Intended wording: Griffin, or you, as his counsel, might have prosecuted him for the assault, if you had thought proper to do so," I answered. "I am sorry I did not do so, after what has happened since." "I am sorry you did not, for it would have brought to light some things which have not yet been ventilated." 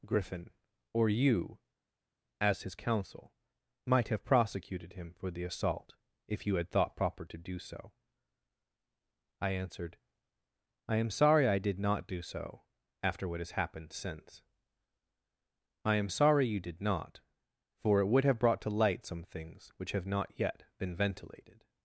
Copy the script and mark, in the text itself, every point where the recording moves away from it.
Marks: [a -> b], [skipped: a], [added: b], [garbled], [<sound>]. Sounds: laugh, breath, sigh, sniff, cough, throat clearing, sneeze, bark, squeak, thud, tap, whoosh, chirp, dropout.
Griffin, or you, as his counsel, might have prosecuted him for the assault, if you had thought proper to do so," I answered. "I am sorry I did not do so, after what has happened since." "I am sorry you did not, for it would have brought to light some things which have not yet been ventilated."